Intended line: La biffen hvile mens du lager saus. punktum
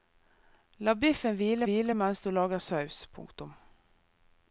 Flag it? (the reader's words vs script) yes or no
yes